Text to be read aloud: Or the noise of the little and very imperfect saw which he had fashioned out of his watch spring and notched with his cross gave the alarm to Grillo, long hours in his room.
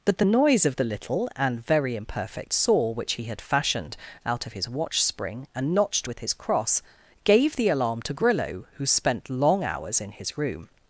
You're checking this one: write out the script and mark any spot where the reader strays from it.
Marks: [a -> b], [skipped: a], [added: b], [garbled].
[Or -> But] the noise of the little and very imperfect saw which he had fashioned out of his watch spring and notched with his cross gave the alarm to Grillo, [added: who spent] long hours in his room.